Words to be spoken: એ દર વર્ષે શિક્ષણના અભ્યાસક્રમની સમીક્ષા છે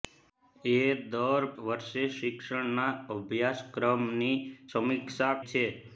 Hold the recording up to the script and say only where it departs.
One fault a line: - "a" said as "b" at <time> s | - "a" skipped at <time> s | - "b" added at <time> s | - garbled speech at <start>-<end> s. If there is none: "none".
none